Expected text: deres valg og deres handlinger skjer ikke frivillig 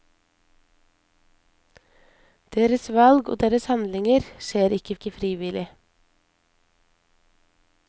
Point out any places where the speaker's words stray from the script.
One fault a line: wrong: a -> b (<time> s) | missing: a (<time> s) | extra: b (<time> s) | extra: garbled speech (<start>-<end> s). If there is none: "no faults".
extra: ikke (4.9 s)